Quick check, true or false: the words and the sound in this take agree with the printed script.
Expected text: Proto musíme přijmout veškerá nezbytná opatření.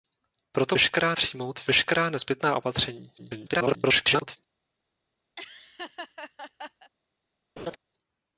false